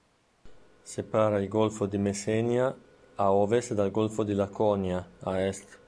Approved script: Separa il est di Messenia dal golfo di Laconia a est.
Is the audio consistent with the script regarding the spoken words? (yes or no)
no